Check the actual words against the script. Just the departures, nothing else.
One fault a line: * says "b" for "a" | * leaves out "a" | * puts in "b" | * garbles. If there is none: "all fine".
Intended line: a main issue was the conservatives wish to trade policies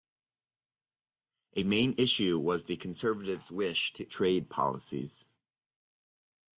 all fine